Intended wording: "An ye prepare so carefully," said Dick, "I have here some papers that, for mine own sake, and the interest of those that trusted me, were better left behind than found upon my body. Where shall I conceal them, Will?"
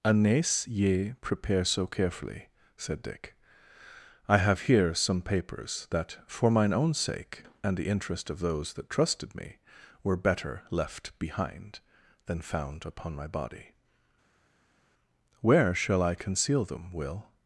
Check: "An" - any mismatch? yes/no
yes